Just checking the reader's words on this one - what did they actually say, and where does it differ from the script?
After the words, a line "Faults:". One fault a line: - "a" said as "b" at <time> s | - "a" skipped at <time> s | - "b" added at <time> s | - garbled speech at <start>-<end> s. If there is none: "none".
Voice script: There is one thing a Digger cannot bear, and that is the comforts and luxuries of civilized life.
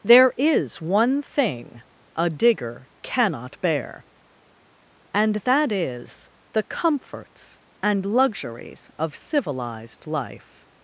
There is one thing a Digger cannot bear, and that is the comforts and luxuries of civilized life.
Faults:
none